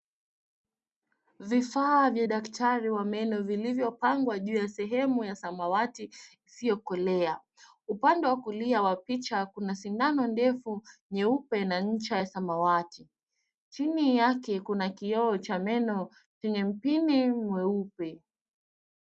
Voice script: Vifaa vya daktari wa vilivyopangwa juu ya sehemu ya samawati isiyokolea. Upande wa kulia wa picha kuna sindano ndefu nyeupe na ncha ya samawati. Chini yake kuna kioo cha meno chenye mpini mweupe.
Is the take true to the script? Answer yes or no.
no